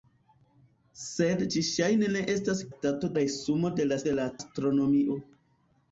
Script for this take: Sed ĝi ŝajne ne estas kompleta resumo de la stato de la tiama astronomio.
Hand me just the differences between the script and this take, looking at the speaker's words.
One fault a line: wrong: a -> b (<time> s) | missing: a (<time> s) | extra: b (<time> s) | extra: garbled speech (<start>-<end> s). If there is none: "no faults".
wrong: kompleta -> stato (2.7 s)
missing: stato (4.0 s)
missing: tiama (4.3 s)